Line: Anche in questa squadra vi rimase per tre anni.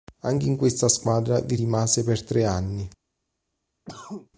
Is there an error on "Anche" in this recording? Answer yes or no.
no